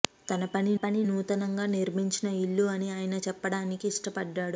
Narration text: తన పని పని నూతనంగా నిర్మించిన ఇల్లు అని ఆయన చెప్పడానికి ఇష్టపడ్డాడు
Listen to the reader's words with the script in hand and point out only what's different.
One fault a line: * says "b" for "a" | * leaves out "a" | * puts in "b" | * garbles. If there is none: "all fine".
all fine